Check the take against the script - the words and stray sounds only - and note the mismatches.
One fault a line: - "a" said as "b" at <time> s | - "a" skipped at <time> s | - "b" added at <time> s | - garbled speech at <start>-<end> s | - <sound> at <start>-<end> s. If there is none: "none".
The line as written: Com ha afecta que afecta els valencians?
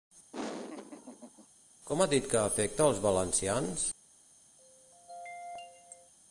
- laugh at 0.3-1.5 s
- "afecta" said as "dit" at 2.1 s
- throat clearing at 4.6-6.1 s